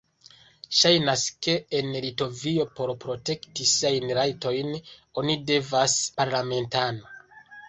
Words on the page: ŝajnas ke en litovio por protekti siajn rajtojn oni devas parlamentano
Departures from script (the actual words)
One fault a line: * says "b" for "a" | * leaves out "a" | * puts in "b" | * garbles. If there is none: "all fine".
all fine